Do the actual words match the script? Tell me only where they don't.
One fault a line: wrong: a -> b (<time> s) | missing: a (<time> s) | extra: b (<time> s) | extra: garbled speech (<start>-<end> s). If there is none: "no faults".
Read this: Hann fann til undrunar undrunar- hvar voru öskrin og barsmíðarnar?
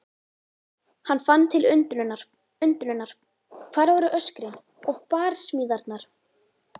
no faults